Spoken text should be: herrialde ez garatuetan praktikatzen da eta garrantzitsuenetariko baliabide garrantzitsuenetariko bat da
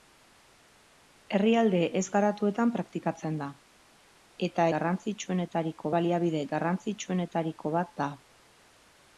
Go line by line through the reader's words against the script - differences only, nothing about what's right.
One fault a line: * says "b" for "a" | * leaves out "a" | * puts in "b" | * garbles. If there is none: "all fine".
all fine